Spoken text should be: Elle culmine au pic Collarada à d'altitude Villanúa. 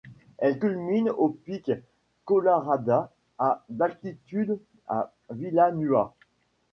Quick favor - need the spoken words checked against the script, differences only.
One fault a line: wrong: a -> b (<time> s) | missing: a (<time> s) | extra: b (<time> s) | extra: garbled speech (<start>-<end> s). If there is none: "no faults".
extra: à (4.9 s)